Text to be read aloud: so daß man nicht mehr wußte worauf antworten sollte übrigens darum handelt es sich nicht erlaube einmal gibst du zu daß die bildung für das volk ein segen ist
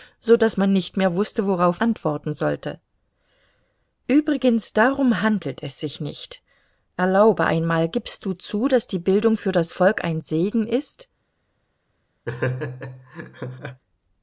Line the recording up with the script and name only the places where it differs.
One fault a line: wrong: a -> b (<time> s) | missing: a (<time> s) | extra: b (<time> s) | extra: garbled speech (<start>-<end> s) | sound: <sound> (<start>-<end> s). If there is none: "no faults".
sound: laugh (12.3-13.8 s)